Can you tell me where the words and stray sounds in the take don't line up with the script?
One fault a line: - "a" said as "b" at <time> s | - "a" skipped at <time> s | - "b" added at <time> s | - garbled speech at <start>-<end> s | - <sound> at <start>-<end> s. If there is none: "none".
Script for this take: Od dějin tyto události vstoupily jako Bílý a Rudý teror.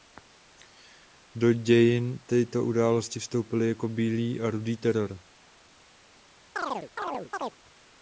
- "Od" said as "Do" at 1.4 s
- chirp at 6.6-7.6 s